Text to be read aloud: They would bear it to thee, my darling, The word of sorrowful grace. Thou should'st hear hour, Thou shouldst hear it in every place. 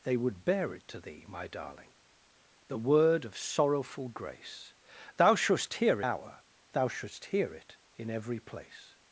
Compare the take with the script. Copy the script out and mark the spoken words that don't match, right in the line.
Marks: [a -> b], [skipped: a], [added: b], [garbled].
They would bear it to thee, my darling, The word of sorrowful grace. Thou should'st hear hour, Thou shouldst hear it in every place.